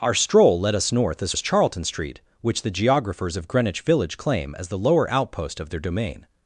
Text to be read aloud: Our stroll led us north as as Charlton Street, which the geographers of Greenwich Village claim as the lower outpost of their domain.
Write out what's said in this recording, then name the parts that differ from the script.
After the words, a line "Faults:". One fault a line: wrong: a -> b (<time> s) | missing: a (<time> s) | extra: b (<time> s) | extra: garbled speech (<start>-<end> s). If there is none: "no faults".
Our stroll led us north as as Charlton Street, which the geographers of Greenwich Village claim as the lower outpost of their domain.
Faults:
no faults